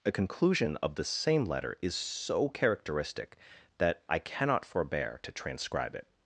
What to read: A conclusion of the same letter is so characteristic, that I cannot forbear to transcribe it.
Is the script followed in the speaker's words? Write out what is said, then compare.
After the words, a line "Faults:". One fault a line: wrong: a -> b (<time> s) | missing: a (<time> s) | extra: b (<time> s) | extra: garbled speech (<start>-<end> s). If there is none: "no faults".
A conclusion of the same letter is so characteristic, that I cannot forbear to transcribe it.
Faults:
no faults